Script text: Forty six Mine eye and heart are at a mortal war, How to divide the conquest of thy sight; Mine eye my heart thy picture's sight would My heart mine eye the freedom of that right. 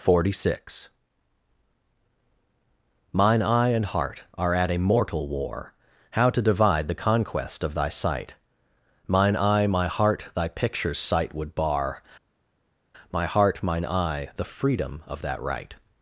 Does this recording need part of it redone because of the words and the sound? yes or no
yes